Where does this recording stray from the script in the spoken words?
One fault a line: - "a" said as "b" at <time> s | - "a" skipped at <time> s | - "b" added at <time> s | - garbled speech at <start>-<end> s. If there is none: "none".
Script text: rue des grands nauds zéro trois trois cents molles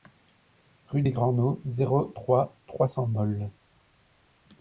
none